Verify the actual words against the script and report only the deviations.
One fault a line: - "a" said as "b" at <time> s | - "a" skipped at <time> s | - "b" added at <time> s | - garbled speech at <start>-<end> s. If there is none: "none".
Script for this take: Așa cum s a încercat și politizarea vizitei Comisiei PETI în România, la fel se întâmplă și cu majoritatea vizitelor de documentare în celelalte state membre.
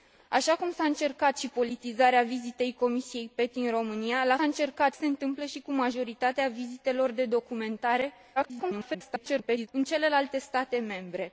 - "fel" said as "încercat" at 4.4 s
- garbled speech at 8.4-9.7 s